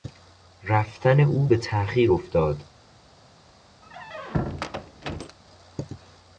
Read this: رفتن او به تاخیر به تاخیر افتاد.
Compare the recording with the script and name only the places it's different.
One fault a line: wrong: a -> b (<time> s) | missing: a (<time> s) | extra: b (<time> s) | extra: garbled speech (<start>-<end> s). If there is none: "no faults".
missing: به تاخیر (2.1 s)